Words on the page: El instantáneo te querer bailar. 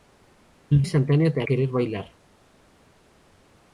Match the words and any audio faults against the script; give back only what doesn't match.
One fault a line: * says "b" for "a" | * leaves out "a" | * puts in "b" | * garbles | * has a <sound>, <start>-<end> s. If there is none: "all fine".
all fine